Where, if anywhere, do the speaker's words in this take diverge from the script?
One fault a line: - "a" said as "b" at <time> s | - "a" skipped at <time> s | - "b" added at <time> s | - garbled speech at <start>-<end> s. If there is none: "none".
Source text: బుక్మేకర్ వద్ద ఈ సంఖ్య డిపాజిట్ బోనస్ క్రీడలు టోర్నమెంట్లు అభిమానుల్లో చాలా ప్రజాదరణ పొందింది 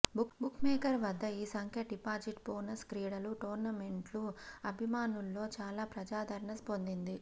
none